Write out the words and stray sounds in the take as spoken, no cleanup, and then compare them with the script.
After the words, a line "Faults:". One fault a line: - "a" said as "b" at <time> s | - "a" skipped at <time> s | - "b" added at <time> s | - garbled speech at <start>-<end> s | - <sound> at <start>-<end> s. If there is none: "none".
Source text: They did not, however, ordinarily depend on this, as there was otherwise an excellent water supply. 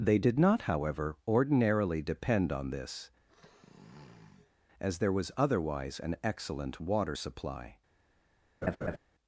They did not, however, ordinarily depend on this, as there was otherwise an excellent water supply.
Faults:
- sniff at 3.3-4.5 s
- laugh at 8.6-9.0 s